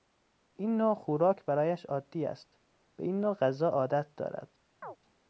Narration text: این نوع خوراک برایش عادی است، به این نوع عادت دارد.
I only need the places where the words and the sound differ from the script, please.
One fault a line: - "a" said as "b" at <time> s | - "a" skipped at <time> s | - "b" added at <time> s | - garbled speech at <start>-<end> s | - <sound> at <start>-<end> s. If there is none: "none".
- "غذا" added at 3.3 s
- chirp at 4.8-5.0 s